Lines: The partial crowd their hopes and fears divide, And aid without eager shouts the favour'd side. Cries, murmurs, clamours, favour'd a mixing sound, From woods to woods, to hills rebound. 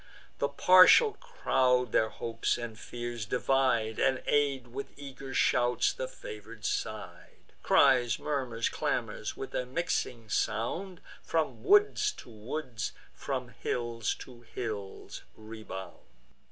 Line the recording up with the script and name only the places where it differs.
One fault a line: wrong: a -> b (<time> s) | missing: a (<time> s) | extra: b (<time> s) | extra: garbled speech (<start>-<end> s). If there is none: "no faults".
wrong: without -> with (4.7 s)
wrong: favour'd -> with (9.4 s)
extra: from hills (13.1 s)